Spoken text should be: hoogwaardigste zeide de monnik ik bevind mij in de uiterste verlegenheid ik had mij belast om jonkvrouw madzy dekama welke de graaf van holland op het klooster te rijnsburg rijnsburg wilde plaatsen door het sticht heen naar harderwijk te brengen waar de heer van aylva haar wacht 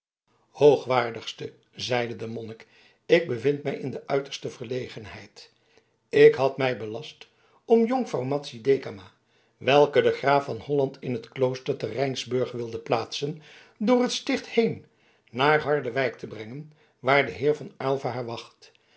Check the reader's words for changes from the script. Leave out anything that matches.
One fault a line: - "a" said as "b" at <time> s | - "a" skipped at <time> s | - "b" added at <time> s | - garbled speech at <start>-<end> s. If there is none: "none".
- "op" said as "in" at 11.0 s
- "rijnsburg" skipped at 12.5 s